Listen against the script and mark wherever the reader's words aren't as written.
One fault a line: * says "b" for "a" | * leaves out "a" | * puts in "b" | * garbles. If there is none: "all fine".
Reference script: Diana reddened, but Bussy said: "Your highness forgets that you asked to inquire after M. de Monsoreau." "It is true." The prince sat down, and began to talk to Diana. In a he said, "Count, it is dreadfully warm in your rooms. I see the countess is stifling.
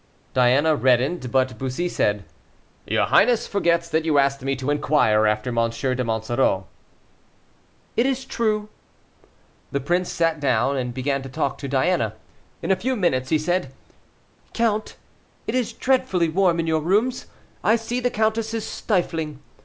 * puts in "me"
* puts in "few minutes"